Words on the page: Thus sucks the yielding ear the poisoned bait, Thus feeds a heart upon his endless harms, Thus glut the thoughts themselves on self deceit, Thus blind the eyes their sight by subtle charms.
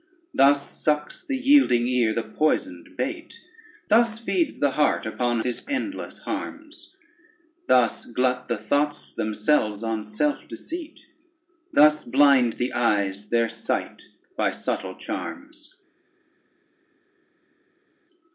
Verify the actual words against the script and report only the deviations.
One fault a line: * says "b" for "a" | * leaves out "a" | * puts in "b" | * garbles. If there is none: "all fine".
* says "the" for "a"